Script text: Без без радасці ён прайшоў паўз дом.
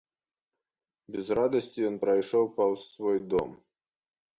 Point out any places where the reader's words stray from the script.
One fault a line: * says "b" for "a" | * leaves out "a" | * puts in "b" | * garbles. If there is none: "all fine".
* leaves out "без"
* puts in "свой"